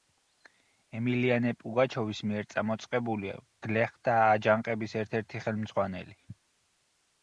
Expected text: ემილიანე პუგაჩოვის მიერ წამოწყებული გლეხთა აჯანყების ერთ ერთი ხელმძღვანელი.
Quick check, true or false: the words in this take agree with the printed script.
true